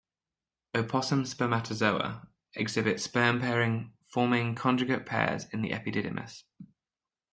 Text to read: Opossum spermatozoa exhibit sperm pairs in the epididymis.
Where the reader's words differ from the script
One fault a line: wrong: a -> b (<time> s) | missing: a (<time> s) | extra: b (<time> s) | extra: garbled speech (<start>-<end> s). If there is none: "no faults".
extra: pairing forming conjugate (3.4 s)